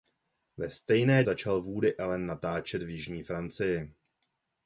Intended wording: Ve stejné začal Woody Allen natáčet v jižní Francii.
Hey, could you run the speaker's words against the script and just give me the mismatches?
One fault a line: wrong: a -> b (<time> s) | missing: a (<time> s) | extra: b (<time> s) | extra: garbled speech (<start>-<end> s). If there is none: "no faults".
no faults